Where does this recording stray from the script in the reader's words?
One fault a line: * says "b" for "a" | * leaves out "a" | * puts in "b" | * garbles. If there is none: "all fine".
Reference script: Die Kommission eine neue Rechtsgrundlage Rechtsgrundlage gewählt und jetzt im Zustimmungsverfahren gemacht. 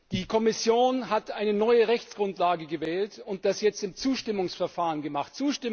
* puts in "hat"
* leaves out "Rechtsgrundlage"
* puts in "das"